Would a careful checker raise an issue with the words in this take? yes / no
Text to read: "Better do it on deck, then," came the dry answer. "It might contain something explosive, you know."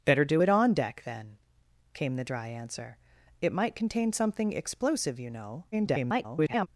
yes